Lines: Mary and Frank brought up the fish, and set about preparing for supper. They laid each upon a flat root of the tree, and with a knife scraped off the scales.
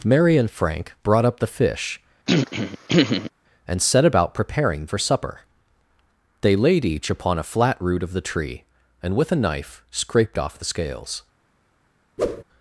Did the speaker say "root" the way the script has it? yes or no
yes